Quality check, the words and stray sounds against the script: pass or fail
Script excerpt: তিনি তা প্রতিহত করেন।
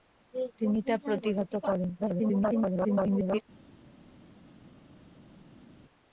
fail